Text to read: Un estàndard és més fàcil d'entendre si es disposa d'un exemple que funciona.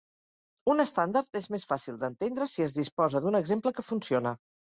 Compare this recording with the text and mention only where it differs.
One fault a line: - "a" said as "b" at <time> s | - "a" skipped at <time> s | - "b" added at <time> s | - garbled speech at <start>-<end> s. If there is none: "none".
none